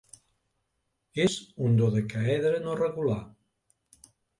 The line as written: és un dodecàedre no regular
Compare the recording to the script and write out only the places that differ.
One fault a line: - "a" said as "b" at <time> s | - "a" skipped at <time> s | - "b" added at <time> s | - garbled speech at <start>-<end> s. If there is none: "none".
none